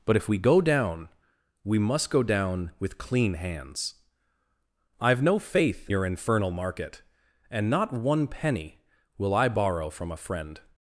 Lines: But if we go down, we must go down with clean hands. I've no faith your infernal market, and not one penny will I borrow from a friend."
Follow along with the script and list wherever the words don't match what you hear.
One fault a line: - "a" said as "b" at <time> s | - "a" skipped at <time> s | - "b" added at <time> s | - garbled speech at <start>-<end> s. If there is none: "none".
none